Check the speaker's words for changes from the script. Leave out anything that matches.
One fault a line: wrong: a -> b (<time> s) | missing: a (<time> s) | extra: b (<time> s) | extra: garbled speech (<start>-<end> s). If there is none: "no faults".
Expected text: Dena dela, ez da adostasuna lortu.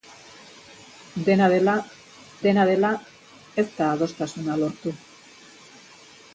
extra: dena dela (2.4 s)